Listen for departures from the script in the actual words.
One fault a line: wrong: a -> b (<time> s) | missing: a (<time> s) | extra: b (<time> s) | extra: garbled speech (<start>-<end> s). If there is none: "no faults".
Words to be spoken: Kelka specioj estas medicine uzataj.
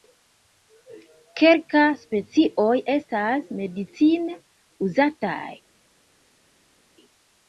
no faults